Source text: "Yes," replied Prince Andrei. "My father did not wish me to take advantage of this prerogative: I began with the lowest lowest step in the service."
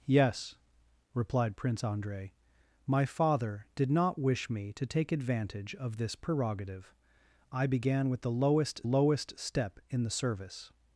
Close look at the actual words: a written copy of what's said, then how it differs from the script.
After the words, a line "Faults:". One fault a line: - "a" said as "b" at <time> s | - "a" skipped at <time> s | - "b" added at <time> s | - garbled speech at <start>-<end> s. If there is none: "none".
"Yes," replied Prince Andrei. "My father did not wish me to take advantage of this prerogative: I began with the lowest lowest step in the service."
Faults:
none